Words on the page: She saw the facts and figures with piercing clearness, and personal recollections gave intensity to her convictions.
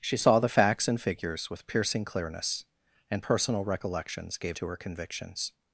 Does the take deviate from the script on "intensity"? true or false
true